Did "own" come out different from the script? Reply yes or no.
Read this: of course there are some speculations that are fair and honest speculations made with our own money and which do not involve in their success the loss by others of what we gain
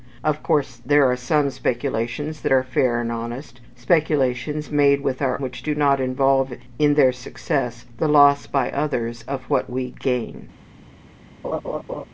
yes